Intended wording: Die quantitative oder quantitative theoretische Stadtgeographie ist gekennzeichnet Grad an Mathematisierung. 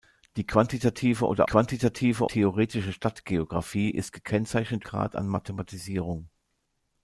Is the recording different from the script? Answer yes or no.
no